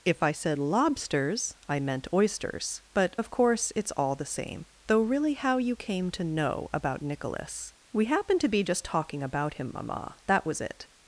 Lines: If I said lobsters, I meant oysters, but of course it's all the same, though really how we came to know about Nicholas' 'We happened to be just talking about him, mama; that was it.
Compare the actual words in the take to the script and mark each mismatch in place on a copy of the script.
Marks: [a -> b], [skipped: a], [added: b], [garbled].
If I said lobsters, I meant oysters, but of course it's all the same, though really how [we -> you] came to know about Nicholas' 'We happened to be just talking about him, mama; that was it.